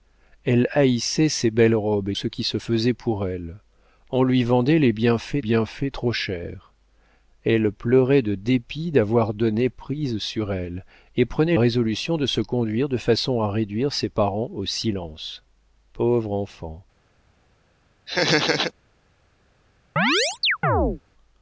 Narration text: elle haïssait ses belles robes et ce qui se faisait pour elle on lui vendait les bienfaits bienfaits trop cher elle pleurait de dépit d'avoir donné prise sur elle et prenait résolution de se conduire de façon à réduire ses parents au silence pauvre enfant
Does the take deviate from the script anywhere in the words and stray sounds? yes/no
yes